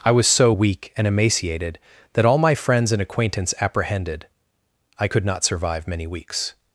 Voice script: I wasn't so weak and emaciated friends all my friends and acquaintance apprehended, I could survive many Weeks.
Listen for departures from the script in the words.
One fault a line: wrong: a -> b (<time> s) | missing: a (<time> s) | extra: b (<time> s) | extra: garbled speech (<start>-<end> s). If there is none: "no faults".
wrong: wasn't -> was (0.1 s)
wrong: friends -> that (2.1 s)
extra: not (5.2 s)